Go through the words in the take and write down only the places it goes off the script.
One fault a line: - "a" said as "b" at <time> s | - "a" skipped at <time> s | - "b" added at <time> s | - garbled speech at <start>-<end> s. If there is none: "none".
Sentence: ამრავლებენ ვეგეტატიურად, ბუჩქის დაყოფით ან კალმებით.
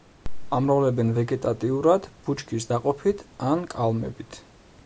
none